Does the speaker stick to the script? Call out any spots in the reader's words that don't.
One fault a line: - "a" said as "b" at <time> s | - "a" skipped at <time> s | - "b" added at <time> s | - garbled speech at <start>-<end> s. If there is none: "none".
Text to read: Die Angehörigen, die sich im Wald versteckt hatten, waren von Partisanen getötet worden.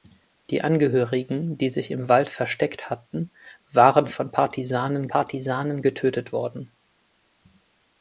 - "Partisanen" added at 5.1 s